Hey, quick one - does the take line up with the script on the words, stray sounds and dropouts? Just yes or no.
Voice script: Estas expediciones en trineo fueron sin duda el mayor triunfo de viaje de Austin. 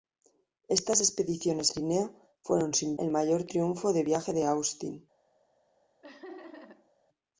no